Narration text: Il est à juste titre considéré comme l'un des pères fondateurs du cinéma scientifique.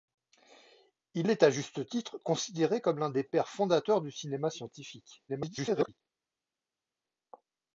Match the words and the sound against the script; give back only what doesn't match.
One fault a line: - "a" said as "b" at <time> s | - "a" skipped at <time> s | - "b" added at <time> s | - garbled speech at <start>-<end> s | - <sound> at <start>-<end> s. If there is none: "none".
- garbled speech at 5.3-6.0 s